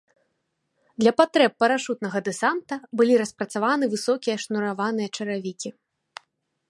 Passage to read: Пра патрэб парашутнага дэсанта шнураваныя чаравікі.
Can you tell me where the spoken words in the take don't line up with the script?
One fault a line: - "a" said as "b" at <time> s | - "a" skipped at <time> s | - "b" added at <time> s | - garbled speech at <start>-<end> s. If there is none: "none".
- "Пра" said as "Для" at 1.0 s
- "былі распрацаваны высокія" added at 3.0 s